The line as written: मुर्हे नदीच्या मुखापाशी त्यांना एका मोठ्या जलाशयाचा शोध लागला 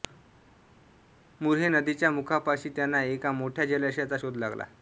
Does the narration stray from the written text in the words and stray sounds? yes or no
no